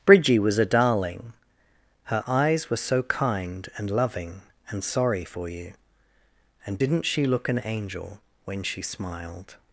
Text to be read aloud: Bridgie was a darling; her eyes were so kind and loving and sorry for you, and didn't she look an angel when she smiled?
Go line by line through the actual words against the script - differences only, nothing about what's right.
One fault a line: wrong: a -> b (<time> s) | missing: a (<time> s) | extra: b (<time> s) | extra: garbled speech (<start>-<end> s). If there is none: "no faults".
no faults